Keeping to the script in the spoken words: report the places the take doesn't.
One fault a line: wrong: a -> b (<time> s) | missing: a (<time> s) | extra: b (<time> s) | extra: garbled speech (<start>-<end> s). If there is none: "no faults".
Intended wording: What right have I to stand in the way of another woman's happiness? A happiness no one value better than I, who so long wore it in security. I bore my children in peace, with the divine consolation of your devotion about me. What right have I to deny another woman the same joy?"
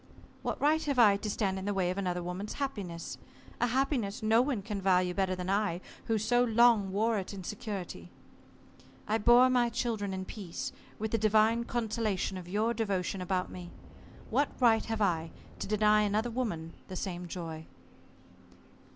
extra: can (4.6 s)